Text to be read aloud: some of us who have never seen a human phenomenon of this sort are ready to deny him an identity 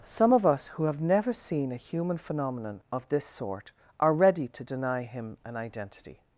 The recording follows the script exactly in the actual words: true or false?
true